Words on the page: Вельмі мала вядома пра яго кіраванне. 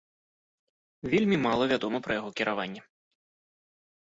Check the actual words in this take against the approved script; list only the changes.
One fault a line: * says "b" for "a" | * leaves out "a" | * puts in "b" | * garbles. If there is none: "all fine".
all fine